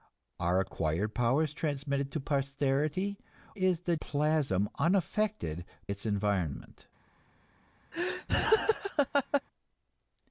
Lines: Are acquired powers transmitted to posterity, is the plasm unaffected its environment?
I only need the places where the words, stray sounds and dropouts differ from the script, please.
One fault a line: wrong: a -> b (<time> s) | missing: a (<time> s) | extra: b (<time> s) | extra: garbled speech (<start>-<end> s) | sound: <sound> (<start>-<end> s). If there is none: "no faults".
sound: laugh (7.9-9.4 s)